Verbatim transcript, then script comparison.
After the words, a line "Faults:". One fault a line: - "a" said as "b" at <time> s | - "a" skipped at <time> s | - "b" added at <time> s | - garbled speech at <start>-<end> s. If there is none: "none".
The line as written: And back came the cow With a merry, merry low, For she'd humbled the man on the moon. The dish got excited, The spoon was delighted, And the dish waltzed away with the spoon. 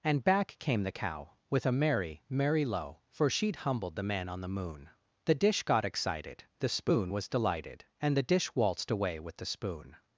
And back came the cow With a merry, merry low, For she'd humbled the man on the moon. The dish got excited, The spoon was delighted, And the dish waltzed away with the spoon.
Faults:
none